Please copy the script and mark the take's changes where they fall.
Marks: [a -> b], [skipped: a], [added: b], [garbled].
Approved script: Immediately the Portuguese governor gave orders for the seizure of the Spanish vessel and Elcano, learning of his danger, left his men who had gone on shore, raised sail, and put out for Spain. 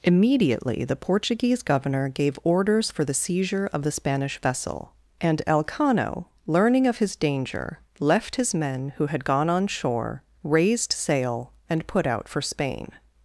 Immediately the Portuguese governor gave orders for the seizure of the Spanish vessel and Elcano, learning of his danger, left his men who had gone on shore, raised sail, and put out for Spain.